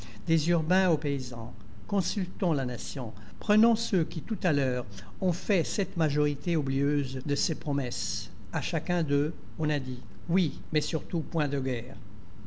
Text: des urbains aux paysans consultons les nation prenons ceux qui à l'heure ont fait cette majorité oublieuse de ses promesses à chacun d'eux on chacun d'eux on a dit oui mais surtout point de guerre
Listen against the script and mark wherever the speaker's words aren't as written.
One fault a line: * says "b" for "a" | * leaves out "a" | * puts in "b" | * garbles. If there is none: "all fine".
* says "la" for "les"
* puts in "tout"
* leaves out "chacun d'eux on"